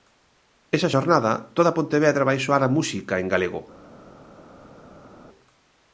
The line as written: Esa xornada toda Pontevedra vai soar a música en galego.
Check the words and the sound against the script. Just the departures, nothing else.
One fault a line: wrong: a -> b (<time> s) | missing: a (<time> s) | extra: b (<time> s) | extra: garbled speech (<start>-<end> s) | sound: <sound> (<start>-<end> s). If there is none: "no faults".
no faults